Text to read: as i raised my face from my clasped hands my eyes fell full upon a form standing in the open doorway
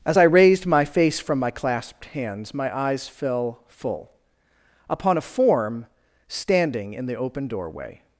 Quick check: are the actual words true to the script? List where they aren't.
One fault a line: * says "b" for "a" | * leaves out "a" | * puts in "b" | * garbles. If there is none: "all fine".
all fine